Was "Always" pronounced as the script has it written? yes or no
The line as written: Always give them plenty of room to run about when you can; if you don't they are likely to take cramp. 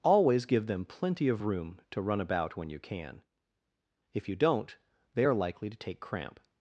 yes